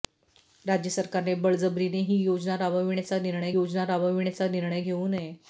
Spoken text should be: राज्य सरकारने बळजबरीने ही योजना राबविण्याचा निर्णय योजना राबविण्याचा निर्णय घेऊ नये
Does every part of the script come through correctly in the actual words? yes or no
yes